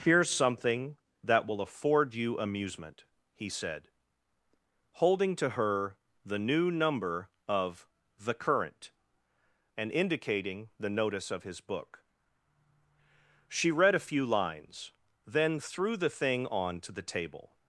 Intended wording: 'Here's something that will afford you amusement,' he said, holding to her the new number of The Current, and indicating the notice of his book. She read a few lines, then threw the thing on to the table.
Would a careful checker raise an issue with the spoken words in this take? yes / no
no